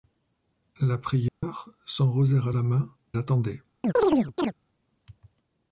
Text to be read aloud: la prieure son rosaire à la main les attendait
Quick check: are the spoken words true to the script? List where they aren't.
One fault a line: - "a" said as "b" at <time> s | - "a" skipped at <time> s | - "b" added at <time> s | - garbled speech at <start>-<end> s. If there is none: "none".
- "les" skipped at 3.0 s